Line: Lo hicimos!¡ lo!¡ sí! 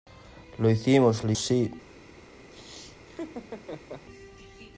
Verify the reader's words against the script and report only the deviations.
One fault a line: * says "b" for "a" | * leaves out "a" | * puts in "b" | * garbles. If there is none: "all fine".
all fine